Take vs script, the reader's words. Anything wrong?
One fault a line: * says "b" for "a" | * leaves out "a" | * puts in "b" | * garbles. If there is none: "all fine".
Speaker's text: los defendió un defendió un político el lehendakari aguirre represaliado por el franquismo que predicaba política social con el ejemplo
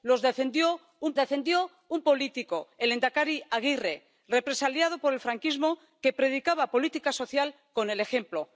all fine